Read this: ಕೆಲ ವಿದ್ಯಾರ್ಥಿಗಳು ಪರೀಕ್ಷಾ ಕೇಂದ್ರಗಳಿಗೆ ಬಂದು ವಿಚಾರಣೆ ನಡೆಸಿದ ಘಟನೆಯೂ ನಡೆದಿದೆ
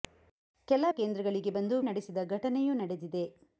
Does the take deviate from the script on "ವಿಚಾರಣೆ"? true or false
true